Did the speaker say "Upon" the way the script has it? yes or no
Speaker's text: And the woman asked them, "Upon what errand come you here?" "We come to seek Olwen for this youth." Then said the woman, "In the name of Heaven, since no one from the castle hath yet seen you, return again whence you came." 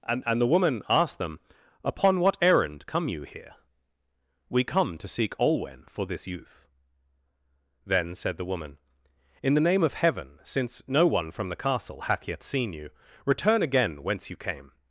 yes